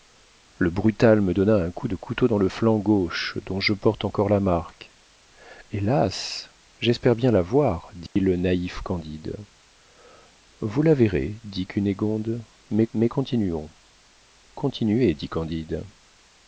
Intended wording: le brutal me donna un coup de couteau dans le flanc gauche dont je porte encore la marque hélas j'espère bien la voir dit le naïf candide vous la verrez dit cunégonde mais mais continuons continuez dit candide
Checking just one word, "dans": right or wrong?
right